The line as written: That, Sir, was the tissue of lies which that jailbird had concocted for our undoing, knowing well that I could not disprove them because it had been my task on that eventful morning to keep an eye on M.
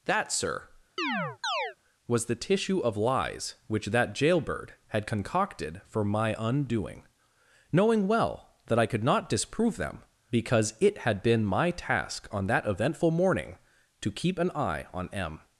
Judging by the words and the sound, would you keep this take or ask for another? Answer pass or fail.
fail